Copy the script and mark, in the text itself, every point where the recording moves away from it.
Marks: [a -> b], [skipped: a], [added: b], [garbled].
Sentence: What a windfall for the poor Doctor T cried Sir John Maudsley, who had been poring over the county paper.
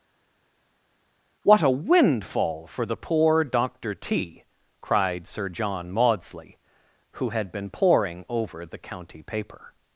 What a windfall for the poor Doctor T cried Sir John Maudsley, who had been poring over the county paper.